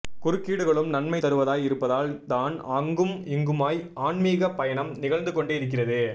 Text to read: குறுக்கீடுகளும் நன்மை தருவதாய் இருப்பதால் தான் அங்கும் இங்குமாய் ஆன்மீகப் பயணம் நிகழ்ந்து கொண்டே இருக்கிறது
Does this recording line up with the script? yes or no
yes